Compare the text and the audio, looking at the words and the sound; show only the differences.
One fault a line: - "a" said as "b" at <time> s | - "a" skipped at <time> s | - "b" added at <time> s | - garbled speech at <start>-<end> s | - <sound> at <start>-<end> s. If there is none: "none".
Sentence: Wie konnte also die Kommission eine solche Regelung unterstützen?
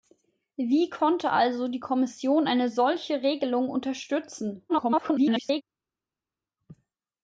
- garbled speech at 4.7-5.6 s